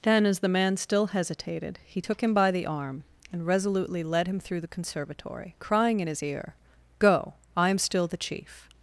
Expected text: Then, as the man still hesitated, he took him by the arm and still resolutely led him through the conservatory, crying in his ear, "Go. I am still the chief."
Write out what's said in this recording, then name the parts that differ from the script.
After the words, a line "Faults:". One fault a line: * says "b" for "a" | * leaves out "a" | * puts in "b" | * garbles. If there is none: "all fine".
Then, as the man still hesitated, he took him by the arm and resolutely led him through the conservatory, crying in his ear, "Go. I am still the chief."
Faults:
* leaves out "still"